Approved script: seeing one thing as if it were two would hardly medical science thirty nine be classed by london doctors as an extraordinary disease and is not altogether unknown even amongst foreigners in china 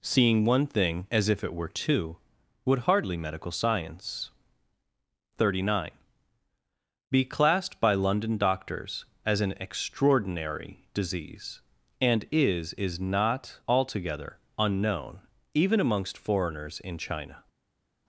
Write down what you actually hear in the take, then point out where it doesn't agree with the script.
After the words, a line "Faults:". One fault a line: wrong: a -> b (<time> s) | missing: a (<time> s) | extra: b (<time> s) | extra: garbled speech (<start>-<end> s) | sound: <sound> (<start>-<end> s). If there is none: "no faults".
seeing one thing as if it were two would hardly medical science thirty nine be classed by london doctors as an extraordinary disease and is is not altogether unknown even amongst foreigners in china
Faults:
extra: is (12.7 s)